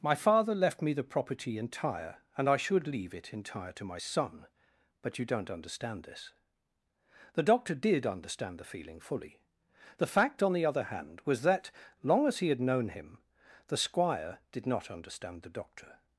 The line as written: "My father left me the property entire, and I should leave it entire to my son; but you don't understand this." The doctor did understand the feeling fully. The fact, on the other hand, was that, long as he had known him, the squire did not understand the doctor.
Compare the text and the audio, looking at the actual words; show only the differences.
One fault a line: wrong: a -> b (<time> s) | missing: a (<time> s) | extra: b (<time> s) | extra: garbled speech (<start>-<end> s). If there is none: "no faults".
no faults